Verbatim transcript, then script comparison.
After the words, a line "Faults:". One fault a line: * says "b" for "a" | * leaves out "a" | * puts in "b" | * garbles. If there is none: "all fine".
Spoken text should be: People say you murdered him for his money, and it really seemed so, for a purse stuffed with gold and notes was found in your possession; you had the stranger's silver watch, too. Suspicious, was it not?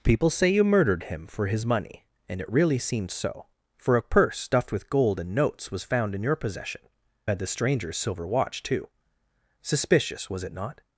People say you murdered him for his money, and it really seemed so, for a purse stuffed with gold and notes was found in your possession; had the stranger's silver watch, too. Suspicious, was it not?
Faults:
* leaves out "you"